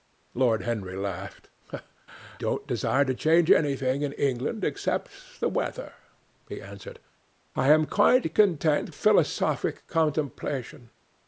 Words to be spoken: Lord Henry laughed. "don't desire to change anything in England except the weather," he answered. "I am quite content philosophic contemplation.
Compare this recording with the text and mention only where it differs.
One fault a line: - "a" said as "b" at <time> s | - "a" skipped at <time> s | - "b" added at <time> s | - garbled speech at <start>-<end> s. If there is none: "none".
none